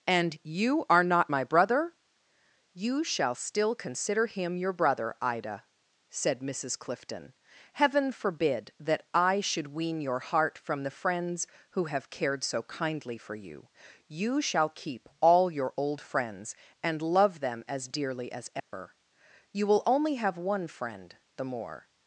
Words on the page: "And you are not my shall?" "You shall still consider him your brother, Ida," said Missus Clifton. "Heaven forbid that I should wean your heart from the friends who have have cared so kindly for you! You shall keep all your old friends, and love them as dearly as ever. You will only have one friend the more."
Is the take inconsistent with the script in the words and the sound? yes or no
yes